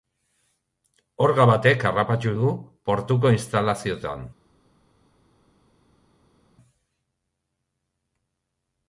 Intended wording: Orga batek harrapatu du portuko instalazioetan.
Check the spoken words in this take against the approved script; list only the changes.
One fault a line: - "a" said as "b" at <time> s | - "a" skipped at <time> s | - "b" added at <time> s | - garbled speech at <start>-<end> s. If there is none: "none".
none